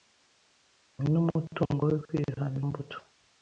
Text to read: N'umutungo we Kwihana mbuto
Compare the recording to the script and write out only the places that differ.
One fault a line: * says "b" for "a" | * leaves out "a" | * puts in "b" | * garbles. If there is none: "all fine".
all fine